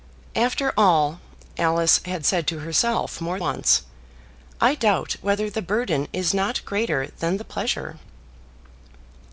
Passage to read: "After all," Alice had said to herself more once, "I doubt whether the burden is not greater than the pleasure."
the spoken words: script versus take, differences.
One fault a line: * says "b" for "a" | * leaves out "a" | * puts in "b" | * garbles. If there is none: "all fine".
all fine